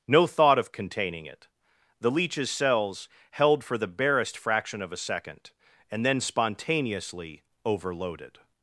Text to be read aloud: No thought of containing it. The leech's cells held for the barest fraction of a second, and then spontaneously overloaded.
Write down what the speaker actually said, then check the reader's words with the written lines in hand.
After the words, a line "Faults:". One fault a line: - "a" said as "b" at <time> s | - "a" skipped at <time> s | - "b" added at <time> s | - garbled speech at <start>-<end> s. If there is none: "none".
No thought of containing it. The leech's cells held for the barest fraction of a second, and then spontaneously overloaded.
Faults:
none